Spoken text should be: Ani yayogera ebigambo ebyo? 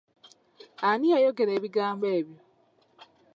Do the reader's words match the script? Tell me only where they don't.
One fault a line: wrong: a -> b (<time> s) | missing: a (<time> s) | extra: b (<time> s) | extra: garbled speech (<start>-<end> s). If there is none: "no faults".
no faults